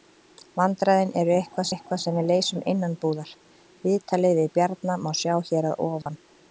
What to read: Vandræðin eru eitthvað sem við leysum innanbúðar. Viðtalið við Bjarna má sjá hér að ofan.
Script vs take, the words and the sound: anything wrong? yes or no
yes